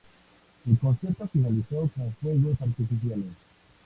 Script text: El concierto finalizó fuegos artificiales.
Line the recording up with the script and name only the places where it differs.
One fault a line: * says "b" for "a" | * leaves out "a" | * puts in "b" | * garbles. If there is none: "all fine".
* puts in "con"